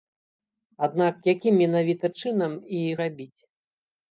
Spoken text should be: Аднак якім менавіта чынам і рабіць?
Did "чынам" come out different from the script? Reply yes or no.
no